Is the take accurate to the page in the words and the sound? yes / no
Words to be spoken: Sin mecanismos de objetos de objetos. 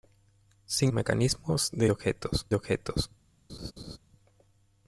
no